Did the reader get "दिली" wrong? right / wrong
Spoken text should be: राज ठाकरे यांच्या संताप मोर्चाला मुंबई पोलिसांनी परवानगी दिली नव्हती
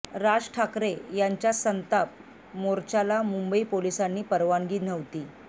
wrong